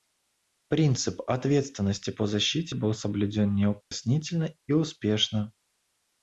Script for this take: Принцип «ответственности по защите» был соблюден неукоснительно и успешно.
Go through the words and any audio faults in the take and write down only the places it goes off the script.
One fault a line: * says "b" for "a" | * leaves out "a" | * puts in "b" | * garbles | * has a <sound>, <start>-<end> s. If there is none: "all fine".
* has a dropout, 3.8-3.9 s